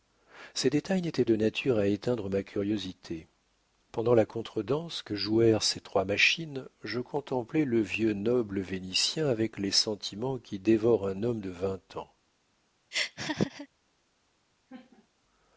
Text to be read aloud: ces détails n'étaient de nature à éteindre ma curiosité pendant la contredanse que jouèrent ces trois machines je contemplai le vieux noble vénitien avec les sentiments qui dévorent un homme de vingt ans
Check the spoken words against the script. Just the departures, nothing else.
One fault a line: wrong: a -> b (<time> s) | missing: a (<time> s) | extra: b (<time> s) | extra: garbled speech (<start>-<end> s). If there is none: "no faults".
no faults